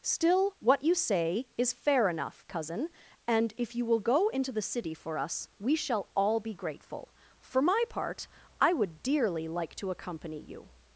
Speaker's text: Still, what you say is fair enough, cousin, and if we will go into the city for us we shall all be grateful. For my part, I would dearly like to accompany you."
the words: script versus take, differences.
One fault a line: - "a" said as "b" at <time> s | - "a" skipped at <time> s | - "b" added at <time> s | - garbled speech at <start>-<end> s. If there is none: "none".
- "we" said as "you" at 3.8 s